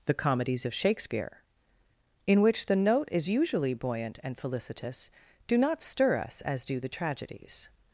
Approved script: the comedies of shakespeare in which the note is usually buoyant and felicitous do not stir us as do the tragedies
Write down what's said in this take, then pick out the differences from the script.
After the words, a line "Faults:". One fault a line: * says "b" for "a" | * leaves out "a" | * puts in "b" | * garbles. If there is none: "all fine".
the comedies of shakespeare in which the note is usually buoyant and felicitous do not stir us as do the tragedies
Faults:
all fine